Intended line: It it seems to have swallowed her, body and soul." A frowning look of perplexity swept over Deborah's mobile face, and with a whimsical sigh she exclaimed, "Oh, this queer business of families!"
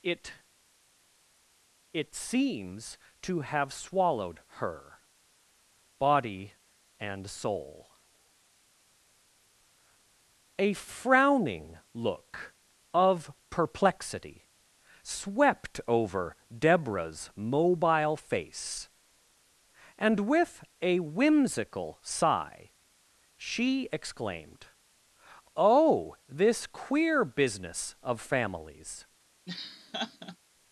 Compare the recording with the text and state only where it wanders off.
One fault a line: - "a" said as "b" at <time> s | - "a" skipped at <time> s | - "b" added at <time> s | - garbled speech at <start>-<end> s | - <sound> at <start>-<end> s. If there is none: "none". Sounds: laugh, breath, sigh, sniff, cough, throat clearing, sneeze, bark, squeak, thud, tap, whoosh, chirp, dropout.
- laugh at 29.5-30.4 s